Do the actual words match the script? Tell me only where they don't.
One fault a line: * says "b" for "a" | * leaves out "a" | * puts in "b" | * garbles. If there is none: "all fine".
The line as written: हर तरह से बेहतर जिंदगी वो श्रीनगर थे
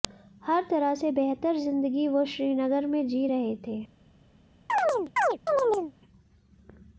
* puts in "में जी रहे"